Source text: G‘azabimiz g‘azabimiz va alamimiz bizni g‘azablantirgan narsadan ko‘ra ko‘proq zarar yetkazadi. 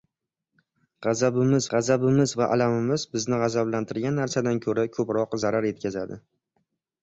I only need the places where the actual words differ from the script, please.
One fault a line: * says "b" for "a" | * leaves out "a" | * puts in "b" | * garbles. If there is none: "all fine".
all fine